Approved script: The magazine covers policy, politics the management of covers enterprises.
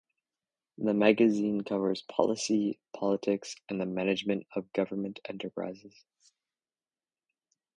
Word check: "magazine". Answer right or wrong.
right